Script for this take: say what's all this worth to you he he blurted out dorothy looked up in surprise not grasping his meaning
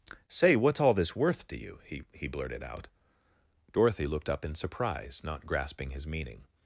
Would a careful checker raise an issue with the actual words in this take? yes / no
no